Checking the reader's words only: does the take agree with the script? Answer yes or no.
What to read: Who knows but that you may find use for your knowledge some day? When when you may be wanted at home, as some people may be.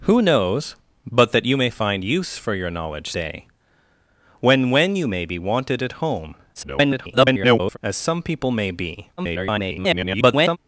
no